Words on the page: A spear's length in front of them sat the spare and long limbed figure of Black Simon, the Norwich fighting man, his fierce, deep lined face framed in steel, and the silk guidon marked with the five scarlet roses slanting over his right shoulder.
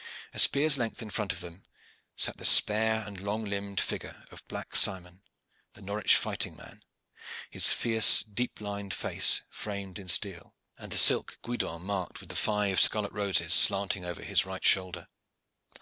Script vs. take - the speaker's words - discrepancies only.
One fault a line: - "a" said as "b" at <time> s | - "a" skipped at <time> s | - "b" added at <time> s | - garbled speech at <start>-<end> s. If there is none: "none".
none